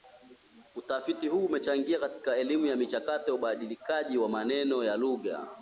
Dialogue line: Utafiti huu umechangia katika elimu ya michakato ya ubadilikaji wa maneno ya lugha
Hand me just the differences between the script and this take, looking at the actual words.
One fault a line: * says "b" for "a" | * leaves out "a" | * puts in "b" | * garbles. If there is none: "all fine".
all fine